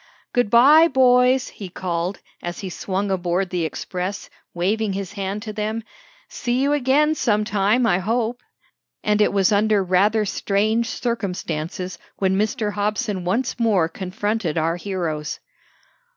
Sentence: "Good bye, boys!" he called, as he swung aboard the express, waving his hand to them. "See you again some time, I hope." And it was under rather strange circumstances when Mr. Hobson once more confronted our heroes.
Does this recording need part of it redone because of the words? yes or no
no